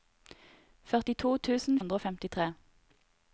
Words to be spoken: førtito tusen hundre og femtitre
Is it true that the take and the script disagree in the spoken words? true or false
false